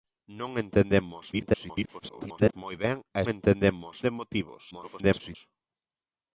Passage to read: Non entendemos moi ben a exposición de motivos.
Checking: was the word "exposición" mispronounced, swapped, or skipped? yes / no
yes